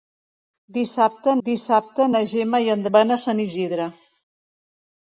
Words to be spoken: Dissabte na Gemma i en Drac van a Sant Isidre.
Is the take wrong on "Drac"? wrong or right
wrong